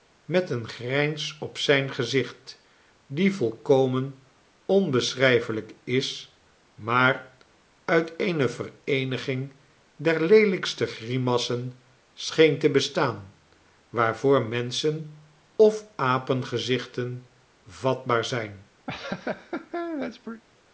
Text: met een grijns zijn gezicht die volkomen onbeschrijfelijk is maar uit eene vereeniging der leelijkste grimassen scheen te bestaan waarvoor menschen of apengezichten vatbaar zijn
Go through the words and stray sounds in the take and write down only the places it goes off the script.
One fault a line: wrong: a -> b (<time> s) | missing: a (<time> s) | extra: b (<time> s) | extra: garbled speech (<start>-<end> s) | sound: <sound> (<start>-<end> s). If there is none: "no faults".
extra: op (1.4 s)
sound: laugh (18.9-20.4 s)